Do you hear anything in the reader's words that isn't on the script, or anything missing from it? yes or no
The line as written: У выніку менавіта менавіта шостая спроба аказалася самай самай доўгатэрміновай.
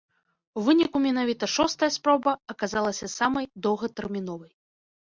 yes